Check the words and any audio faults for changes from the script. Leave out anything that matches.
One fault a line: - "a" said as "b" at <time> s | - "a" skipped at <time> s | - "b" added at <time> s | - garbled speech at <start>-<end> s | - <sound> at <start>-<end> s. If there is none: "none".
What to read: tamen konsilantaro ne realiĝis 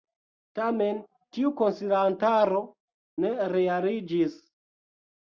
- "tiu" added at 1.4 s